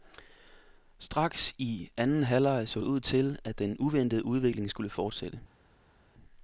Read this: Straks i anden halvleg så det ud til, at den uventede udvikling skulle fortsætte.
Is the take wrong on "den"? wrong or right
right